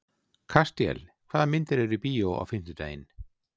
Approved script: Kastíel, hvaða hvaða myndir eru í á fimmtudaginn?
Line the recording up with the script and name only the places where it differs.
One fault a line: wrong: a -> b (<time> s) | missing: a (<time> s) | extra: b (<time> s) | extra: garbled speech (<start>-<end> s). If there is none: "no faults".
missing: hvaða (1.5 s)
extra: bíó (2.1 s)